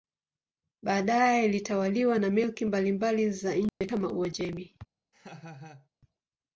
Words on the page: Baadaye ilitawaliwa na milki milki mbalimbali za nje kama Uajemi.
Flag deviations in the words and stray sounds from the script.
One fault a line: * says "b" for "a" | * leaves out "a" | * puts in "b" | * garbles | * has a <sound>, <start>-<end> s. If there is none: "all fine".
* leaves out "milki"
* has a dropout, 3.7-3.8 s
* has a laugh, 5.1-5.9 s